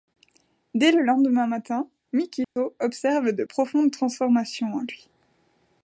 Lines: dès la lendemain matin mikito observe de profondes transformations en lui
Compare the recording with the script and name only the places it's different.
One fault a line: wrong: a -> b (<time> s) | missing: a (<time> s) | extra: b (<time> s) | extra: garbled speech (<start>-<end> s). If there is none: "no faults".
wrong: la -> le (0.9 s)